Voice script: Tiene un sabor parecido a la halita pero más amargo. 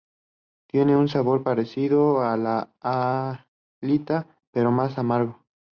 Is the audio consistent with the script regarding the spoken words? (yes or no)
yes